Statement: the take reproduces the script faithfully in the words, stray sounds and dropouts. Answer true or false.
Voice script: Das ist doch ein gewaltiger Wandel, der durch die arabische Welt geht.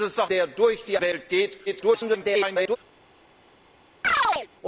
false